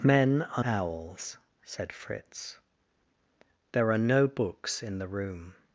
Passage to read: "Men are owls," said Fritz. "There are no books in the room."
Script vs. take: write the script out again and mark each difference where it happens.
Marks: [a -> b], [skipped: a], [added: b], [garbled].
"Men are owls," said Fritz. "There are no books in the room."